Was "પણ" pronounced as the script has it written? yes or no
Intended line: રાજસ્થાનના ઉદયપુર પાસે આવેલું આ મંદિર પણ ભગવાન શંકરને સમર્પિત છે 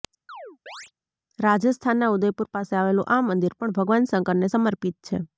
yes